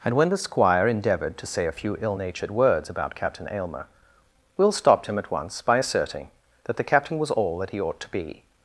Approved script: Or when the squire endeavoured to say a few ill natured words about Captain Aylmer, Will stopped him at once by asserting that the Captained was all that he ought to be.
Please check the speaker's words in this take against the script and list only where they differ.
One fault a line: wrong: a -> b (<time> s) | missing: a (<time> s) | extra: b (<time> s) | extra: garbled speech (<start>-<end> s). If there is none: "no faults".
wrong: Or -> And (0.0 s)
wrong: Captained -> Captain (6.8 s)